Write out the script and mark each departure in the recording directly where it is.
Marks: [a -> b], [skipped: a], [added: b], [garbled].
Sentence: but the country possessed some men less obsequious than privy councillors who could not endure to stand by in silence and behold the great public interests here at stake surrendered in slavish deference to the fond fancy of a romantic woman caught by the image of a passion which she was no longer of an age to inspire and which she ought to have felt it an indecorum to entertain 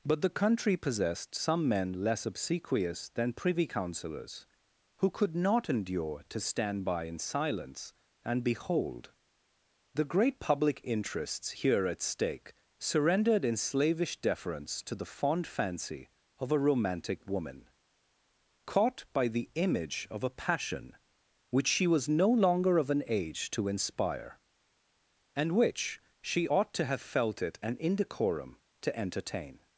but the country possessed some men less obsequious than privy councillors who could not endure to stand by in silence and behold the great public interests here at stake surrendered in slavish deference to the fond fancy of a romantic woman caught by the image of a passion which she was no longer of an age to inspire and which she ought to have felt it an indecorum to entertain